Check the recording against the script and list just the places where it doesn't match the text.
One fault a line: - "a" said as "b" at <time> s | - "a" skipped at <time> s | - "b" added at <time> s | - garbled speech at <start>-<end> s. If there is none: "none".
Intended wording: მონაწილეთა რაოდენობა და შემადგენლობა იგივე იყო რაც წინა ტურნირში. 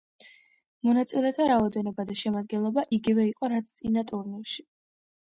none